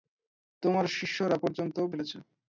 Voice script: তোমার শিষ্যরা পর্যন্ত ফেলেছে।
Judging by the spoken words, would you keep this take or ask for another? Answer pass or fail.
pass